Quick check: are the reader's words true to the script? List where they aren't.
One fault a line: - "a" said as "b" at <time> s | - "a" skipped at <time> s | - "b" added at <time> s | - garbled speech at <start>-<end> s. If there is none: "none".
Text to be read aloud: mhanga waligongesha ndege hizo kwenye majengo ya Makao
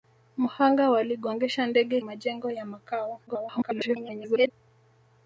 - "hizo kwenye" skipped at 2.0 s
- garbled speech at 3.3-4.5 s